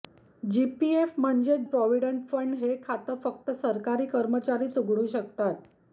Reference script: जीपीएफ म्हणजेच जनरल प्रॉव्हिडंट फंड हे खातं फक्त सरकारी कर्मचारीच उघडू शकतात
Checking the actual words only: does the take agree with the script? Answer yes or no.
no